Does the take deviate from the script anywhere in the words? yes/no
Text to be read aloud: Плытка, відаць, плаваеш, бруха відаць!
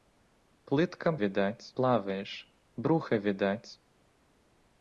no